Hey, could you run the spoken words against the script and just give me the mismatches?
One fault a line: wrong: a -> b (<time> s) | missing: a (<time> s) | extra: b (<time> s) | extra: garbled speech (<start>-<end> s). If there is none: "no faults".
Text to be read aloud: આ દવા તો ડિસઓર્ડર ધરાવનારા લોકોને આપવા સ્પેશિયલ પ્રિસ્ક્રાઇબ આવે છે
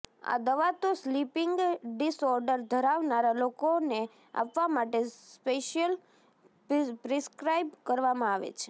extra: સ્લીપિંગ (0.9 s)
extra: માટે (4.7 s)
extra: કરવામાં (7.8 s)